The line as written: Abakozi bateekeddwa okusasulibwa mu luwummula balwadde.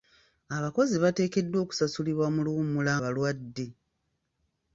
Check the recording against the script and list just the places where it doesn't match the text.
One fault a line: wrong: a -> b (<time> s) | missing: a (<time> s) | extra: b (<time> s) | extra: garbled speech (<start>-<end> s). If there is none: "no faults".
no faults